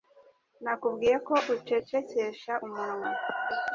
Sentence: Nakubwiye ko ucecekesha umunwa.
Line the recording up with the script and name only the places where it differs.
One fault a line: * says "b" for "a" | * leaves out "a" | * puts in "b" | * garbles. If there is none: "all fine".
all fine